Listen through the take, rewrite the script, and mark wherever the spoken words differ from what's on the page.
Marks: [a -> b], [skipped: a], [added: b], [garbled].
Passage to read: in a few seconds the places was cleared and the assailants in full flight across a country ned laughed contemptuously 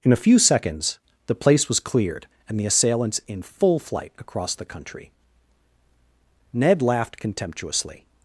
in a few seconds the [places -> place] was cleared and the assailants in full flight across [a -> the] country ned laughed contemptuously